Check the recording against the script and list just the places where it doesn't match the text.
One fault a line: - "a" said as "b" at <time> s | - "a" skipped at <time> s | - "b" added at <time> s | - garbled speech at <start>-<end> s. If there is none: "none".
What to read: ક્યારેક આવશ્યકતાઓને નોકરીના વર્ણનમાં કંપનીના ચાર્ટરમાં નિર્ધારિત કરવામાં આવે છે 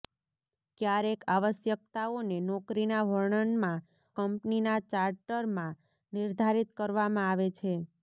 none